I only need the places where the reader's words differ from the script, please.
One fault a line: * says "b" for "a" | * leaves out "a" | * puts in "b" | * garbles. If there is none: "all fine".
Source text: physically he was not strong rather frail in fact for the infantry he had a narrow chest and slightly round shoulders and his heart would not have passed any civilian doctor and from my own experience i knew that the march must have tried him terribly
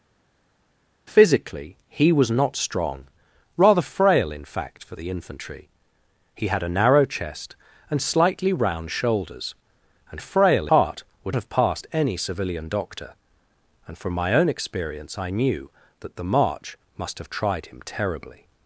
* says "frail" for "his"
* leaves out "not"